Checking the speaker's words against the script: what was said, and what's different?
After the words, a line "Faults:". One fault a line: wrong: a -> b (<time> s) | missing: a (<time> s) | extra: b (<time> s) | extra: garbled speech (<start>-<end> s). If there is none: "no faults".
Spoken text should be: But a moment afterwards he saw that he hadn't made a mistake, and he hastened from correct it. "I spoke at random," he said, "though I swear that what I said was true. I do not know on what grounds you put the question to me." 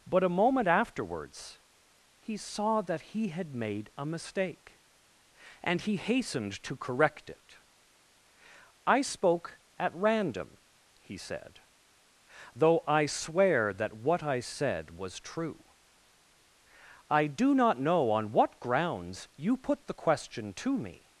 But a moment afterwards he saw that he had made a mistake, and he hastened to correct it. "I spoke at random," he said, "though I swear that what I said was true. I do not know on what grounds you put the question to me."
Faults:
wrong: hadn't -> had (3.3 s)
wrong: from -> to (6.6 s)